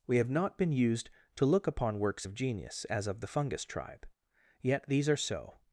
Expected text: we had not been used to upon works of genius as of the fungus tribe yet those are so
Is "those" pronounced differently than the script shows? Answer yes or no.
yes